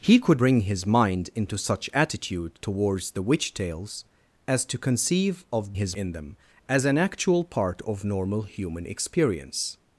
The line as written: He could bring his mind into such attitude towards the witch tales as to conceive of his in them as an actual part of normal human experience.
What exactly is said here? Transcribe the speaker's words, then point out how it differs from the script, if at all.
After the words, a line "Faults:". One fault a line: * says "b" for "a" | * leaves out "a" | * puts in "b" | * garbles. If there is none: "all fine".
He could bring his mind into such attitude towards the witch tales as to conceive of his in them as an actual part of normal human experience.
Faults:
all fine